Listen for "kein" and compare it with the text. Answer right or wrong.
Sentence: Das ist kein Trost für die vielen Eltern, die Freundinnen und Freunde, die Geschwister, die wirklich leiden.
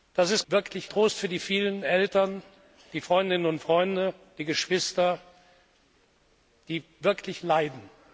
wrong